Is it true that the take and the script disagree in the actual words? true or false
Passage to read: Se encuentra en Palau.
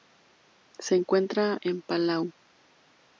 false